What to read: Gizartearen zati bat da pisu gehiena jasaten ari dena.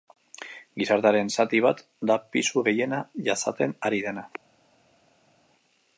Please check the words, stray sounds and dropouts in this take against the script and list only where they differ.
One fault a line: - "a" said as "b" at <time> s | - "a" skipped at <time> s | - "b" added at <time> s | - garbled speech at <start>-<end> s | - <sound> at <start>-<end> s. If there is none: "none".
none